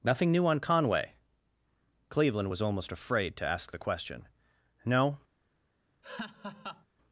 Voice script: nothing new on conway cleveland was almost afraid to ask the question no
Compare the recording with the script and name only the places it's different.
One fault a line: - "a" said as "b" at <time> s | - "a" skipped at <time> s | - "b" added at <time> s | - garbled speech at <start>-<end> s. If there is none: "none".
none